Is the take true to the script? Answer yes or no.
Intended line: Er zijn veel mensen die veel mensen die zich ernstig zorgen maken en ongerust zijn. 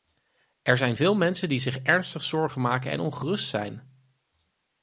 no